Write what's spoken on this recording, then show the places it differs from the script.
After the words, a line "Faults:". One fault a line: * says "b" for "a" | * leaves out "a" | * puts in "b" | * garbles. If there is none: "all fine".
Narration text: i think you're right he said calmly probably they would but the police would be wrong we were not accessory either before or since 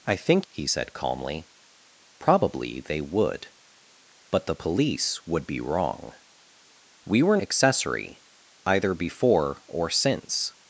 i think he said calmly probably they would but the police would be wrong we were accessory either before or since
Faults:
* leaves out "you're right"
* leaves out "not"